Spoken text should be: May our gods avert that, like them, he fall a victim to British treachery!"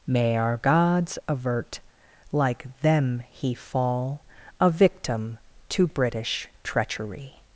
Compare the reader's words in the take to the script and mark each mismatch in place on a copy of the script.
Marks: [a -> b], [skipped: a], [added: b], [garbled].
May our gods avert [skipped: that,] like them, he fall a victim to British treachery!"